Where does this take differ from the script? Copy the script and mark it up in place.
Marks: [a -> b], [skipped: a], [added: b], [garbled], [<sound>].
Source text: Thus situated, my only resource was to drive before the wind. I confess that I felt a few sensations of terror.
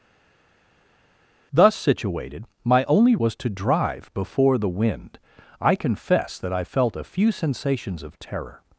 Thus situated, my only [skipped: resource] was to drive before the wind. I confess that I felt a few sensations of terror.